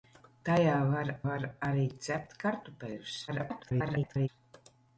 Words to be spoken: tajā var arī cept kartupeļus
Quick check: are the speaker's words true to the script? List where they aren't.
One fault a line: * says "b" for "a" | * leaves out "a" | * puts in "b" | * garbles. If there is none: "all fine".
* puts in "var"
* garbles